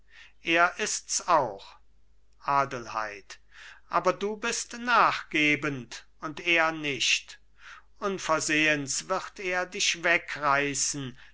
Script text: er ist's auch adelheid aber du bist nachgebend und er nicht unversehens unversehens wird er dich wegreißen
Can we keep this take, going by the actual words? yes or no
no